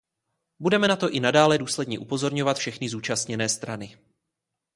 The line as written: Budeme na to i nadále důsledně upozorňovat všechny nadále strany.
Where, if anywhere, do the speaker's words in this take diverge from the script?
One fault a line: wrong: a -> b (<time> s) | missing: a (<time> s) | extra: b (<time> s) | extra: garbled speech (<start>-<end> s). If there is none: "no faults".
wrong: nadále -> zúčastněné (2.9 s)